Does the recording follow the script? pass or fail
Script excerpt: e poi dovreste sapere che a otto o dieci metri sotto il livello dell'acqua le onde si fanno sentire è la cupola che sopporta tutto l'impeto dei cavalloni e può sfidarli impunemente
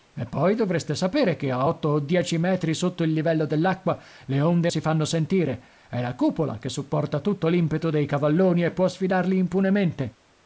pass